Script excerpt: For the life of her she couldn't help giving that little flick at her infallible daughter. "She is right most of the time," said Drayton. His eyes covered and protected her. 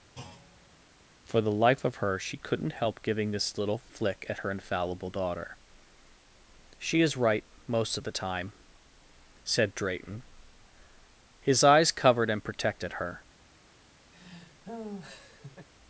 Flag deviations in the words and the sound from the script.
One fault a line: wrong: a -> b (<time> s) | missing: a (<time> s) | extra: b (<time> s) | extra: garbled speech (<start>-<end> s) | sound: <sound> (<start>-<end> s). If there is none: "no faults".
sound: thud (0.1-0.8 s)
wrong: that -> this (3.3 s)
sound: laugh (14.1-15.7 s)